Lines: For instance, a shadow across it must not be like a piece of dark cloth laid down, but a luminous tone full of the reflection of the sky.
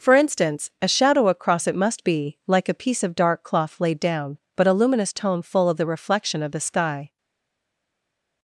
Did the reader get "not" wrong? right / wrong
wrong